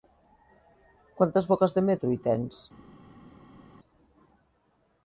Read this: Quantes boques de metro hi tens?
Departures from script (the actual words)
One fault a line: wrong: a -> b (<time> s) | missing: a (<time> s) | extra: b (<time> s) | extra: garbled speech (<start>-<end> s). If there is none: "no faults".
no faults